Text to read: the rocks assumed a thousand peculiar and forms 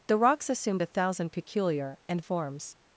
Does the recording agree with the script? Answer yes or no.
yes